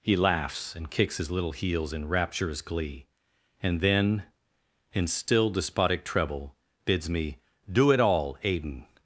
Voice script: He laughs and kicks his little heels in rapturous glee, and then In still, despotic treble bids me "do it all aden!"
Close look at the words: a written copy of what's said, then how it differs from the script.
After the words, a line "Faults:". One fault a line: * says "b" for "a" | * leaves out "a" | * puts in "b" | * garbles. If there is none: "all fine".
He laughs and kicks his little heels in rapturous glee, and then In still, despotic treble bids me "do it all aden!"
Faults:
all fine